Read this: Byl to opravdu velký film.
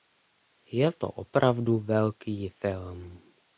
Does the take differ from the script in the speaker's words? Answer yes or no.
yes